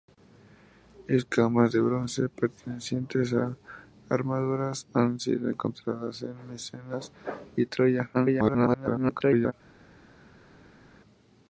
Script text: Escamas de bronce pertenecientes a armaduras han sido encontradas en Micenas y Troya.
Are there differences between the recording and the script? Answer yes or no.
yes